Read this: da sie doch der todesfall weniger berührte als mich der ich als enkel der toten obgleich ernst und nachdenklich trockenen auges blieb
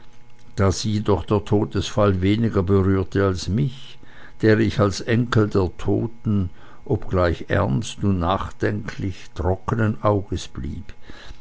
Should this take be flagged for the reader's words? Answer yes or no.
no